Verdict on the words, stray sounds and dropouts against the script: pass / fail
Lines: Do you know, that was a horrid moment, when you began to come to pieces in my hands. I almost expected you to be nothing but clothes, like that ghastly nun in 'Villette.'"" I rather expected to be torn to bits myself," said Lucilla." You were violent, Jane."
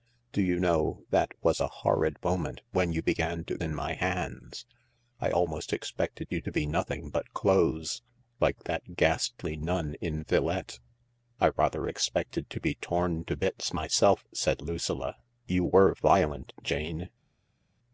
fail